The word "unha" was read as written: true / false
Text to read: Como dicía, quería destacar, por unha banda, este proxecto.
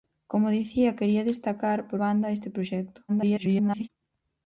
false